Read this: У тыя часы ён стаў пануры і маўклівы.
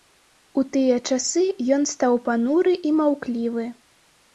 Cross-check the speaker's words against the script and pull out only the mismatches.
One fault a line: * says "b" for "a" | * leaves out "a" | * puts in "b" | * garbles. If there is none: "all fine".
all fine